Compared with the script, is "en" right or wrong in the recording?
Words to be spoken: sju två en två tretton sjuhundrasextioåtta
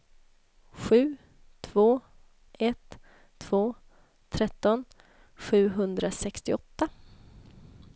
wrong